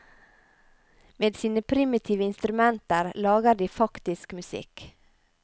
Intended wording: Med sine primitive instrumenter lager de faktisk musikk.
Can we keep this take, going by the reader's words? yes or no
yes